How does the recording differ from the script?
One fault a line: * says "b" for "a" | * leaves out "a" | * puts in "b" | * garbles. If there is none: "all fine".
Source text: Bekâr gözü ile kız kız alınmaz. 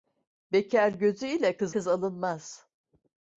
all fine